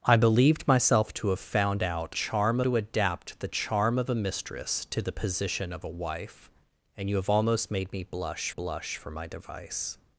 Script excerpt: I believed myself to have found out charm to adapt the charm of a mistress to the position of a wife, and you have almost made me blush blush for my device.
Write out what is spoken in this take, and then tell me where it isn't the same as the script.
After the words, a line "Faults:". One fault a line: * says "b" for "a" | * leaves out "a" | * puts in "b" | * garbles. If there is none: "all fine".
I believed myself to have found out charm to adapt the charm of a mistress to the position of a wife, and you have almost made me blush blush for my device.
Faults:
all fine